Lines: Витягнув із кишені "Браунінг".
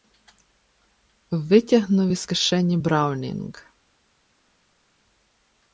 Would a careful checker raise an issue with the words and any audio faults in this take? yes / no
no